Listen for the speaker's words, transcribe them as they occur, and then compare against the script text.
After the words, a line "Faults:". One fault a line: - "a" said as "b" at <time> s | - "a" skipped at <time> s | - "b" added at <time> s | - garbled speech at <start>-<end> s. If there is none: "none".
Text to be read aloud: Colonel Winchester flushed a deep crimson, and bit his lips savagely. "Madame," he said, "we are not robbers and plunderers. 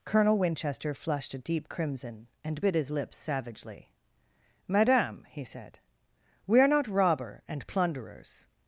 Colonel Winchester flushed a deep crimson, and bit his lips savagely. "Madame," he said, "we are not robber and plunderers.
Faults:
- "robbers" said as "robber" at 6.9 s